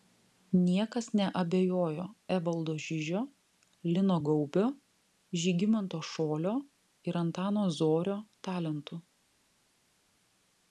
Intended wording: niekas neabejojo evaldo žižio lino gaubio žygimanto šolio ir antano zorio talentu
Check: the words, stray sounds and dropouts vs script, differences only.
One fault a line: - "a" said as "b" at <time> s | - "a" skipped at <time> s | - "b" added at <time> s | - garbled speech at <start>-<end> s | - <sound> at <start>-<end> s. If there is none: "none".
none